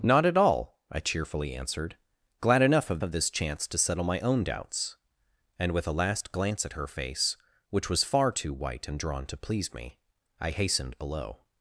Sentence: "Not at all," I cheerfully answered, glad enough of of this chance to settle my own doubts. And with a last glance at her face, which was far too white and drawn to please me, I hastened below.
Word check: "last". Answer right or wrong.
right